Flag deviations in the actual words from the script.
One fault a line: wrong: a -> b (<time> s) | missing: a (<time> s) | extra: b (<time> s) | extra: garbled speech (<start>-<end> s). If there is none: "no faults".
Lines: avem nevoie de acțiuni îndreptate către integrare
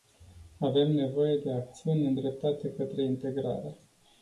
no faults